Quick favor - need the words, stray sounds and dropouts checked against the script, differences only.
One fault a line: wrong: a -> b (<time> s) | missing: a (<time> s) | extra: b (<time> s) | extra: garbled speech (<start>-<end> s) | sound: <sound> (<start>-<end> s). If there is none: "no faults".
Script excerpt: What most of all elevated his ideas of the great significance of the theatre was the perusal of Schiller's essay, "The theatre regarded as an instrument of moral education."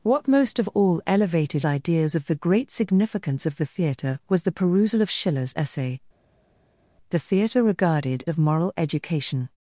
missing: his (1.6 s)
missing: as an instrument (8.2 s)